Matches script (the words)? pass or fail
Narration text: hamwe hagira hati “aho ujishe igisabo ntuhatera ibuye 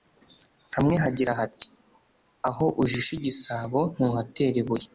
pass